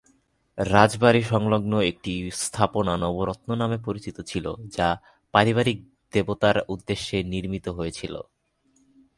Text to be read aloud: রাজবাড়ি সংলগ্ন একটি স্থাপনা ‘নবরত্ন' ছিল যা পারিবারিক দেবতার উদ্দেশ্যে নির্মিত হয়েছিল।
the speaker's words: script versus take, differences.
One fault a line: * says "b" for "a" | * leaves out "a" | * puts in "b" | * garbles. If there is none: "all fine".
* puts in "নামে পরিচিত"